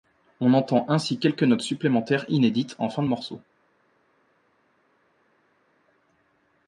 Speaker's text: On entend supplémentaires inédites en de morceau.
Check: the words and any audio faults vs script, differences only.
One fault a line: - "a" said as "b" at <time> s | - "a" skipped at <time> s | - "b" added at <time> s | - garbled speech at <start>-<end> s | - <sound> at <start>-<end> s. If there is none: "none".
- "ainsi quelques notes" added at 0.9 s
- "fin" added at 2.9 s